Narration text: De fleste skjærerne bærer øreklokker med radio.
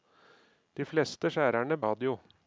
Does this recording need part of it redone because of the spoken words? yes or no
yes